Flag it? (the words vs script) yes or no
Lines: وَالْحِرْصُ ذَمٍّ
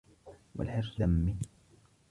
no